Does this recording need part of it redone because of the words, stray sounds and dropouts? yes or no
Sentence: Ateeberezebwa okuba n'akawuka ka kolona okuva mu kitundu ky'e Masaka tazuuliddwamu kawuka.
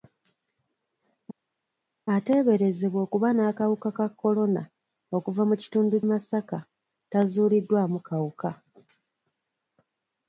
yes